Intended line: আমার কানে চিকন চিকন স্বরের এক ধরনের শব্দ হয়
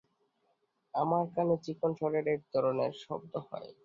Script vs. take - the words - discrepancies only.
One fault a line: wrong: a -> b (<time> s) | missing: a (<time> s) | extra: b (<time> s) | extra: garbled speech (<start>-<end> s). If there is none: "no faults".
missing: চিকন (1.9 s)